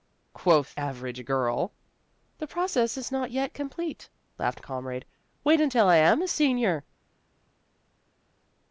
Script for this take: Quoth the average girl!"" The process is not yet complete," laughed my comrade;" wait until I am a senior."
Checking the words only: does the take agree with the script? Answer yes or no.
no